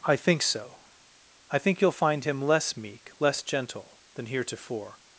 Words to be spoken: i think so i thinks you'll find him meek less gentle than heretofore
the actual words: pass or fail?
fail